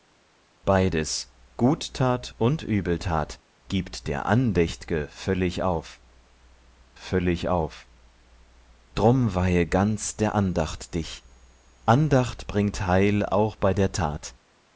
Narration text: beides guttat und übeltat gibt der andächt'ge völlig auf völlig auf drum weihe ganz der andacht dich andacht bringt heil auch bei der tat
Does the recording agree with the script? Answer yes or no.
yes